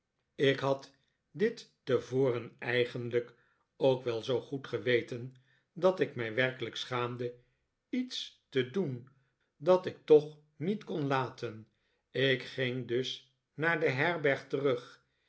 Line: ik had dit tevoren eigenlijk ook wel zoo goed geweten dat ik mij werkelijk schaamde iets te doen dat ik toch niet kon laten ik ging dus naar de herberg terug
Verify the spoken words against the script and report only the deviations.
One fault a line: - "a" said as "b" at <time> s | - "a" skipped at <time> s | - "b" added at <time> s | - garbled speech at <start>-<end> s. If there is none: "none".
none